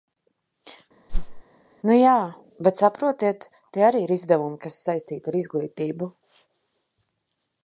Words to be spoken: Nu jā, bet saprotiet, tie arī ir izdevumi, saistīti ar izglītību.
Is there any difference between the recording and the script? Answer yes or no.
yes